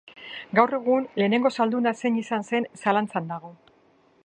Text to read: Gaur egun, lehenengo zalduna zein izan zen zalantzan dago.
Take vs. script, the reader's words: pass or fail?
pass